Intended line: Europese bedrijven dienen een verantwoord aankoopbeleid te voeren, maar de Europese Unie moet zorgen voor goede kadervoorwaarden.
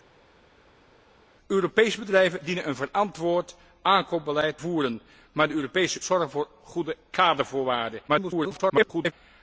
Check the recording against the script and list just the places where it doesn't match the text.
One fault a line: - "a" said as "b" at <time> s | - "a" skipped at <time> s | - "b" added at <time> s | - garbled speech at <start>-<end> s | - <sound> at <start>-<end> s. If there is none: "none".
- "te" skipped at 4.6 s
- "Unie moet" skipped at 6.0 s
- garbled speech at 8.1-9.1 s